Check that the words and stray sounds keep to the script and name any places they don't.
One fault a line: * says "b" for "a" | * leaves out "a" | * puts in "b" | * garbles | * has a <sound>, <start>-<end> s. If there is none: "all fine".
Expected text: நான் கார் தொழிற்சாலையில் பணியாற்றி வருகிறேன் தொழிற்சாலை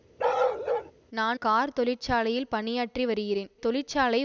* has a bark, 0.2-0.9 s